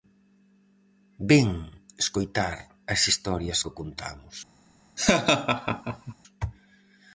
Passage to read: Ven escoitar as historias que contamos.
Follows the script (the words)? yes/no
yes